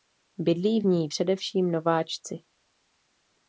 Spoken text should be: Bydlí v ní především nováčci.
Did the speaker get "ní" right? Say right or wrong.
right